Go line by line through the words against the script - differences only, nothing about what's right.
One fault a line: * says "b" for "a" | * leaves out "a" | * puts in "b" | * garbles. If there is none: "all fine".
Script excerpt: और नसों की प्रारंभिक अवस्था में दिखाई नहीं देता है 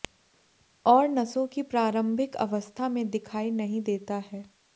all fine